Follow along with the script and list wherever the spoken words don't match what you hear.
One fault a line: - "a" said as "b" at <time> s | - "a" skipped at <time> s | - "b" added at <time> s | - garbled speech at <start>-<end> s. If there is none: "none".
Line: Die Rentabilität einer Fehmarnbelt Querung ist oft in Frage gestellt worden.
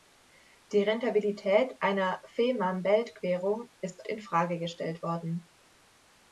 - "oft" skipped at 4.0 s